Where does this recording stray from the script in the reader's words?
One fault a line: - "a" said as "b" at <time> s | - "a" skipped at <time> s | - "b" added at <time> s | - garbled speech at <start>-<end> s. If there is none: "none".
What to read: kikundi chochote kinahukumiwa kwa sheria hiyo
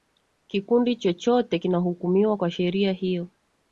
none